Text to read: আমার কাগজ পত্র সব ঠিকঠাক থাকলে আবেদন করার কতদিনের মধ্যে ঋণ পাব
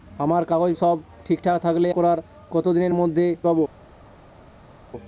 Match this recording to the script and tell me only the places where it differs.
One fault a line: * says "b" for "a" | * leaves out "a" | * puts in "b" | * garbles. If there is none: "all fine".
* leaves out "পত্র"
* leaves out "আবেদন"
* leaves out "ঋণ"